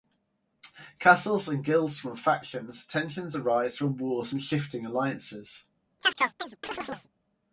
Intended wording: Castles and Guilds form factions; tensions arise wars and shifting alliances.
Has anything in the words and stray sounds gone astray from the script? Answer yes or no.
yes